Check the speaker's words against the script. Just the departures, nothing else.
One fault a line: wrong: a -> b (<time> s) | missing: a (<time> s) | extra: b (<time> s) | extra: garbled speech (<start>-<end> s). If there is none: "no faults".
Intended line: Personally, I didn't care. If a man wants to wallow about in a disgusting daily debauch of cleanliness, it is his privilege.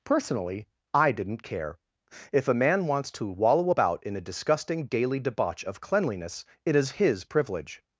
no faults